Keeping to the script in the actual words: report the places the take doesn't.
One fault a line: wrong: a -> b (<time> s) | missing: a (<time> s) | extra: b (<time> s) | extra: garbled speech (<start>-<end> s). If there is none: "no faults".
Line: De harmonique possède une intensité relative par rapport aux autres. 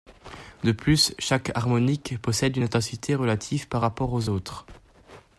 extra: plus chaque (0.7 s)